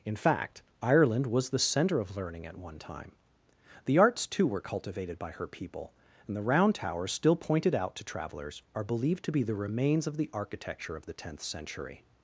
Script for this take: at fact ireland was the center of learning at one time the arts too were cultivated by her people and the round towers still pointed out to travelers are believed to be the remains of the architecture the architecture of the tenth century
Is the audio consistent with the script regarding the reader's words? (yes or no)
no